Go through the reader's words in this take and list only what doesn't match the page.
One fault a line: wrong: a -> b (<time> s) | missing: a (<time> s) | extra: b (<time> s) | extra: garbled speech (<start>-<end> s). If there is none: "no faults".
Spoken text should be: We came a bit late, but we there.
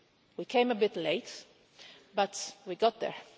extra: got (2.8 s)